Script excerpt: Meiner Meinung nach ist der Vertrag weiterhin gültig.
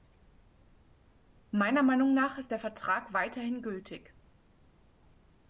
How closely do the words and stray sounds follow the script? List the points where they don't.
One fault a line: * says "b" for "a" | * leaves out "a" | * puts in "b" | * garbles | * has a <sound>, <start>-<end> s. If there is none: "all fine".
all fine